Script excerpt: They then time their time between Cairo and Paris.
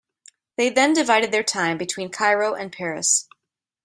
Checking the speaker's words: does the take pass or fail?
fail